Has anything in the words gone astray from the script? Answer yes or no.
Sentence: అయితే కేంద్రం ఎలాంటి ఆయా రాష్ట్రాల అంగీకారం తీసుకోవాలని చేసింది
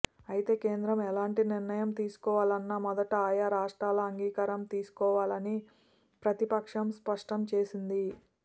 yes